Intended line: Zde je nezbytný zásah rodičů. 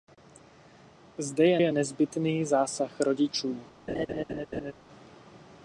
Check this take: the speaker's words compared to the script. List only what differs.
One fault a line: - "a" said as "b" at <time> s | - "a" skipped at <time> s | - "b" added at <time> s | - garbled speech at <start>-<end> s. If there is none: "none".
- "je" added at 1.6 s